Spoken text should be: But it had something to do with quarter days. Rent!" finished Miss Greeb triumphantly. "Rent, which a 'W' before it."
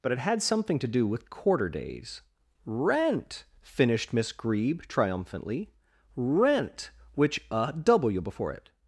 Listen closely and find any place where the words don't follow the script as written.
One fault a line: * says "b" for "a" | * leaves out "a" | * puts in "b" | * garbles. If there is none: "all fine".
all fine